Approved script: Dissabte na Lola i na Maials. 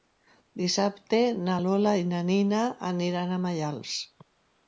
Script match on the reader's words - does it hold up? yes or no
no